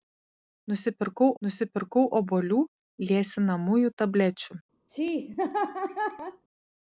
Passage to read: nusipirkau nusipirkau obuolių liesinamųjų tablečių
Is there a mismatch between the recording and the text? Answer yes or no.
no